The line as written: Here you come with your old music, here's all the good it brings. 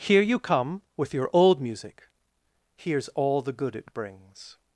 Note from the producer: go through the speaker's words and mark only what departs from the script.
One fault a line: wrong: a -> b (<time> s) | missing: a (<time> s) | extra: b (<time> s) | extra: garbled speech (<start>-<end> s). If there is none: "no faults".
no faults